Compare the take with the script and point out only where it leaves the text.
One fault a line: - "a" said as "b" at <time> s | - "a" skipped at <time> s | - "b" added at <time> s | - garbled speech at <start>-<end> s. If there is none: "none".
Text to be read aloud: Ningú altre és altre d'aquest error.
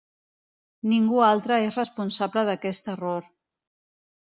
- "altre" said as "responsable" at 1.8 s